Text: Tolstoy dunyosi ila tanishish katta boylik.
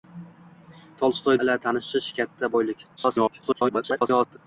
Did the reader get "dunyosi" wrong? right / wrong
wrong